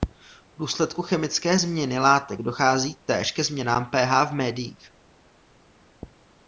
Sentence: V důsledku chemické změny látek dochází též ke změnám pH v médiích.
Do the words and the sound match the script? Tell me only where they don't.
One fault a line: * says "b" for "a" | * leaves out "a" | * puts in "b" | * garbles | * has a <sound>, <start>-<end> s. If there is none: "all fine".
all fine